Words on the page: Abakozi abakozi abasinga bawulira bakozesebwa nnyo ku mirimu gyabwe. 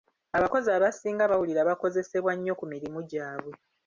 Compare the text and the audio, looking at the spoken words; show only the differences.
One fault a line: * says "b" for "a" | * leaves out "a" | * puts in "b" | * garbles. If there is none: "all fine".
* leaves out "abakozi"